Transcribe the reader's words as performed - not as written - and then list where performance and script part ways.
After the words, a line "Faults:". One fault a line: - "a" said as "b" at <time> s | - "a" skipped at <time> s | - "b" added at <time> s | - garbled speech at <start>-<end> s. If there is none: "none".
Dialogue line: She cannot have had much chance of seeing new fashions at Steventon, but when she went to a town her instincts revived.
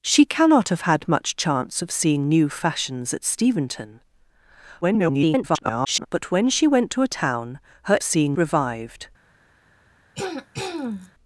She cannot have had much chance of seeing new fashions at Steventon, [garbled] but when she went to a town her seeing revived.
Faults:
- garbled speech at 4.8-6.1 s
- "instincts" said as "seeing" at 8.0 s